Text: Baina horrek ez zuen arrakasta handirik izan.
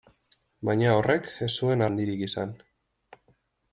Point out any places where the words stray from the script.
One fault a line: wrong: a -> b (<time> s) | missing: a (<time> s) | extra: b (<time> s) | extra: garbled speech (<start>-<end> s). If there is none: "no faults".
missing: arrakasta (1.9 s)